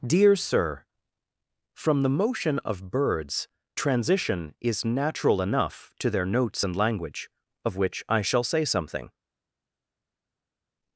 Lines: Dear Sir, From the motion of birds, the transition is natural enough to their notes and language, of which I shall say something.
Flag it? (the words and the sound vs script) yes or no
yes